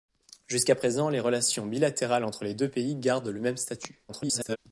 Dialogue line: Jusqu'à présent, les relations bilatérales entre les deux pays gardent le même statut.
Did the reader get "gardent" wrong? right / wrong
right